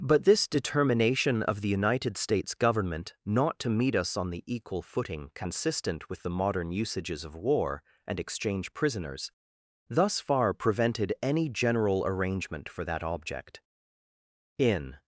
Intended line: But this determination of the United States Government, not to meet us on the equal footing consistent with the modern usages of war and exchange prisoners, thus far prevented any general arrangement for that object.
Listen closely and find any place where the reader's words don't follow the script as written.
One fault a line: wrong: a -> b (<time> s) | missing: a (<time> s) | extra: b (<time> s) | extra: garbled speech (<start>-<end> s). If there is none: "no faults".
extra: In (14.6 s)